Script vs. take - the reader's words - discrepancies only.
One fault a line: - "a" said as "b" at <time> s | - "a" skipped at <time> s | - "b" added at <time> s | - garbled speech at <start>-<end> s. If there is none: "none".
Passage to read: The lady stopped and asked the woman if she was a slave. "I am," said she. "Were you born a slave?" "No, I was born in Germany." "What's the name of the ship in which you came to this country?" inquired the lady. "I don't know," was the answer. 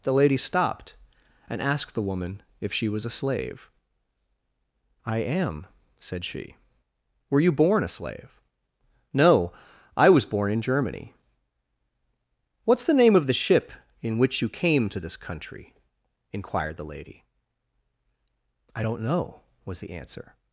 none